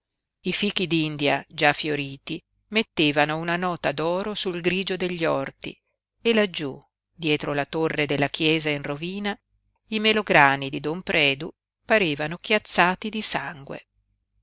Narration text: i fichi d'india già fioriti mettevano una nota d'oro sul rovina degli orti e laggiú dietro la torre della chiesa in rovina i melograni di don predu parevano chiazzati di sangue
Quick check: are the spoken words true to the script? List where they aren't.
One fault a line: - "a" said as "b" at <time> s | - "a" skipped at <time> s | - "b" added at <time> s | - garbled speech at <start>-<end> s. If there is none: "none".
- "rovina" said as "grigio" at 4.6 s